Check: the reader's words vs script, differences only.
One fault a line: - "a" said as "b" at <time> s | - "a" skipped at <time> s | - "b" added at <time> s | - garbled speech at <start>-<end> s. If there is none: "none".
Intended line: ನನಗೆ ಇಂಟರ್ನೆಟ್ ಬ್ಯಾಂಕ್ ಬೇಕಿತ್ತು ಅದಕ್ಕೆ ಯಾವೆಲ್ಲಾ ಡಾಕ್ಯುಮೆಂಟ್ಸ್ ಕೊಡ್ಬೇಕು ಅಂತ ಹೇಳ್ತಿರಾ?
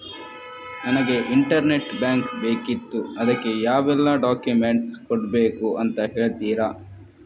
none